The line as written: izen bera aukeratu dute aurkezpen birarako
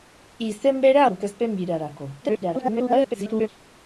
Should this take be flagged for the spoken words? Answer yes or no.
yes